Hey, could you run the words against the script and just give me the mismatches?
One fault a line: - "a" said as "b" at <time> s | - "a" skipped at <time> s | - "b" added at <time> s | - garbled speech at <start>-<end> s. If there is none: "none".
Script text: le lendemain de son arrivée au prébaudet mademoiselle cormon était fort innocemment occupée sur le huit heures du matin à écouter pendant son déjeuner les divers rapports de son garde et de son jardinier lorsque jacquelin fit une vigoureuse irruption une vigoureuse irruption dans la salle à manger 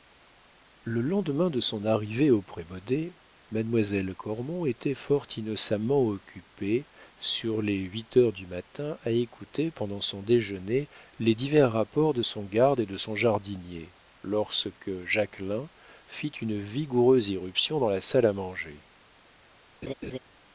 - "le" said as "les" at 7.6 s
- "une vigoureuse irruption" skipped at 17.8 s